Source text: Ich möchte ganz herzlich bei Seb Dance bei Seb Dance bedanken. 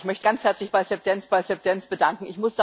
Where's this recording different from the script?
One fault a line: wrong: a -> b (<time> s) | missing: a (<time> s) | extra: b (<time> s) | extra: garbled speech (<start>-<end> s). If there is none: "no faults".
no faults